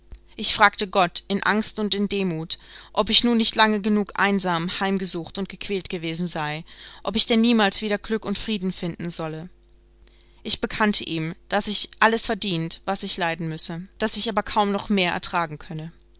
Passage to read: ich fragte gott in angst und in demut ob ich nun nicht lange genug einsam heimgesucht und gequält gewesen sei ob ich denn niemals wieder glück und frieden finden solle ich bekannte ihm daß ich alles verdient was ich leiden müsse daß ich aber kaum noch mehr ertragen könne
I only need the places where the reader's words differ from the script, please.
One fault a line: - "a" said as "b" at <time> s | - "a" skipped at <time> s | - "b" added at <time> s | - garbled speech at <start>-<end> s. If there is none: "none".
none